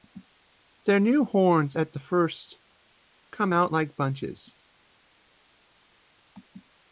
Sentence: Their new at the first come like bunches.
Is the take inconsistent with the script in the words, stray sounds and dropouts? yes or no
yes